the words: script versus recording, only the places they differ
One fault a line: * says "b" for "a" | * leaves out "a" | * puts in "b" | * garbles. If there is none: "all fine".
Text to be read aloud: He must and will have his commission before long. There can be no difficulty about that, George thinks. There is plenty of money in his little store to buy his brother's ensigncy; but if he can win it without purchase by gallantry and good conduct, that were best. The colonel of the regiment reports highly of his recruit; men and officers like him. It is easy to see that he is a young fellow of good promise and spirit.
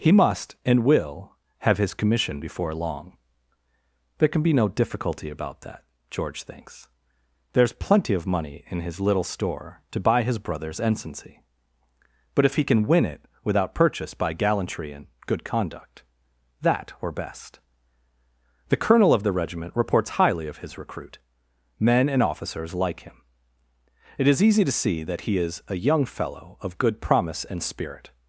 all fine